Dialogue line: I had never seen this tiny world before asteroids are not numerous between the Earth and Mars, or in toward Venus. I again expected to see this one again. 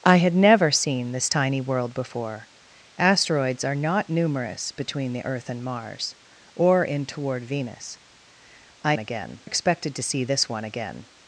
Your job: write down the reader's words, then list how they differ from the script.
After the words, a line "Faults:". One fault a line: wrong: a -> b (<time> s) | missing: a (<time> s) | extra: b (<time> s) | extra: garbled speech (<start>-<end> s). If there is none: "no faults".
I had never seen this tiny world before asteroids are not numerous between the Earth and Mars, or in toward Venus. I again expected to see this one again.
Faults:
no faults